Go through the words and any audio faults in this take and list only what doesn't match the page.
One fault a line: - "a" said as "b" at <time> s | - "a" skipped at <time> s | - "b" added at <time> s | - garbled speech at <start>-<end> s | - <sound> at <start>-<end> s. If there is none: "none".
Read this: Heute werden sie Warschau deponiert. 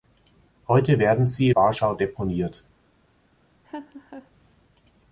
- laugh at 3.6-4.3 s